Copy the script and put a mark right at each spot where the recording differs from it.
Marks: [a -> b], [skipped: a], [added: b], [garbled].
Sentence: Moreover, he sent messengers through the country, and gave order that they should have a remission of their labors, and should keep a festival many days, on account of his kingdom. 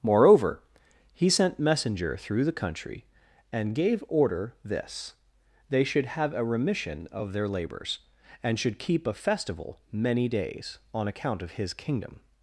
Moreover, he sent [messengers -> messenger] through the country, and gave order [that -> this] they should have a remission of their labors, and should keep a festival many days, on account of his kingdom.